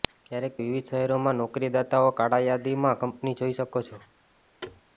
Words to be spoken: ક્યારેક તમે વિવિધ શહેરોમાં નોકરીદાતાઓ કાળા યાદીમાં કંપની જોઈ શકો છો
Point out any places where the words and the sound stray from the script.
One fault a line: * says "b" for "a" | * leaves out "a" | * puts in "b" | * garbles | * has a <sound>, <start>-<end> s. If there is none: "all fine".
* leaves out "તમે"
* has a thud, 4.6-4.8 s